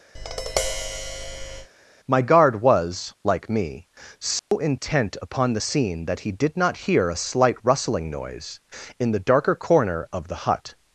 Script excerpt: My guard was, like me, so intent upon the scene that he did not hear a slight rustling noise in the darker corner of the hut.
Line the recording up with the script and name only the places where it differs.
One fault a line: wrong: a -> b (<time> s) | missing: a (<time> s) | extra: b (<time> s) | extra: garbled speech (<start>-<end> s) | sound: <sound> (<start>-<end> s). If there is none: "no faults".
sound: tap (0.1-1.7 s)
sound: dropout (4.4-4.5 s)